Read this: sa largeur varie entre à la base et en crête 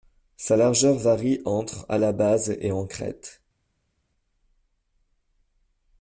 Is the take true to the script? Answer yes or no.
yes